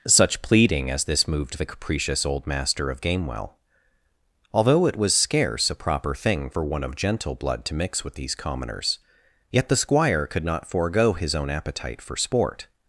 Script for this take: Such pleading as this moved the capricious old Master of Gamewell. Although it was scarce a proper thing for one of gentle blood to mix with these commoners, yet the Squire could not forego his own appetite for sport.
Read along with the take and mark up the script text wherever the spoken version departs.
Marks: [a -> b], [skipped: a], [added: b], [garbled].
Such pleading as this moved the capricious old Master of Gamewell. Although it was scarce a proper thing for one of gentle blood to mix with these commoners, yet the Squire could not forego his own appetite for sport.